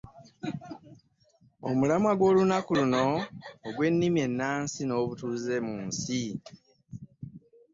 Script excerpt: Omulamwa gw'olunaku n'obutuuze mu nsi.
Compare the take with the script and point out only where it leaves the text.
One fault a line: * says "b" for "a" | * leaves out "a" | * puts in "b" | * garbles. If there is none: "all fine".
* puts in "luno ogw'ennimi ennansi"